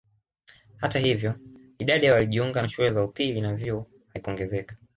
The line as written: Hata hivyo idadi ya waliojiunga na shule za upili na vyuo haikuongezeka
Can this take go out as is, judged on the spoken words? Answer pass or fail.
pass